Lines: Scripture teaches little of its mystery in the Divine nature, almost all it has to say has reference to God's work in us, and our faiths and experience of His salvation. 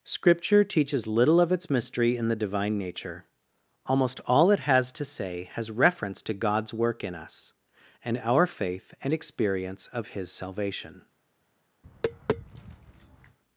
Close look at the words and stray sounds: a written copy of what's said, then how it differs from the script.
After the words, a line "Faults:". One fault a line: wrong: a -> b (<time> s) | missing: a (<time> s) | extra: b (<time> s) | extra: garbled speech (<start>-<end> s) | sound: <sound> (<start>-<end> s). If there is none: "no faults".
Scripture teaches little of its mystery in the Divine nature, almost all it has to say has reference to God's work in us, and our faith and experience of His salvation.
Faults:
wrong: faiths -> faith (8.5 s)
sound: tap (11.8-13.4 s)